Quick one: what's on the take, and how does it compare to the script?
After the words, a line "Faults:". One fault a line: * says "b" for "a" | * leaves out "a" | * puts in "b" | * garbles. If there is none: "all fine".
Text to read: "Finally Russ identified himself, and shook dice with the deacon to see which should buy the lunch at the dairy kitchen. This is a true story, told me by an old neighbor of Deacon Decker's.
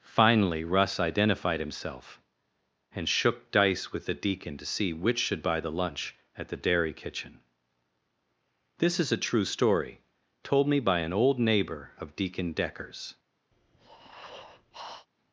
"Finally Russ identified himself, and shook dice with the deacon to see which should buy the lunch at the dairy kitchen. This is a true story, told me by an old neighbor of Deacon Decker's.
Faults:
all fine